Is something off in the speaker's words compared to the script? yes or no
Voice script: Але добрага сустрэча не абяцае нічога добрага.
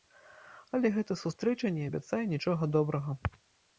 yes